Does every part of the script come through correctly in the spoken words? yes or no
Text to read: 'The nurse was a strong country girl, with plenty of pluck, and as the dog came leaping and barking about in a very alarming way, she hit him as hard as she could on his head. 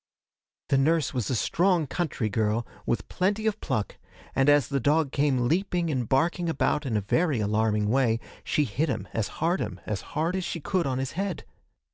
no